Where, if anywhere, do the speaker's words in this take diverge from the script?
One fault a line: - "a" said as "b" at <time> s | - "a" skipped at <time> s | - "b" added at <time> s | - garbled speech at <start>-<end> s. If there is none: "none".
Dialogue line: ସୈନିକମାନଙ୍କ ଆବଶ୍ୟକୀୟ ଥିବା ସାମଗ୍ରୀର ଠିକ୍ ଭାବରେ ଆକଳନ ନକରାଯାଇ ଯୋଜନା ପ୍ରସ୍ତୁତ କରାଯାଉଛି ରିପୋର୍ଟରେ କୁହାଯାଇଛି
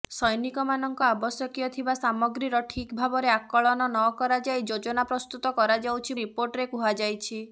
none